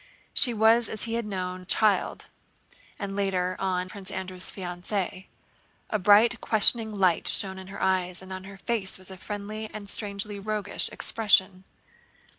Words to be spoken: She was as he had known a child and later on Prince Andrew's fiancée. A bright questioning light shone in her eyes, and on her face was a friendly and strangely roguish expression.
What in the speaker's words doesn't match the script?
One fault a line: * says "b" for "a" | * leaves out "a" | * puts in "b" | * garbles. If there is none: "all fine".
all fine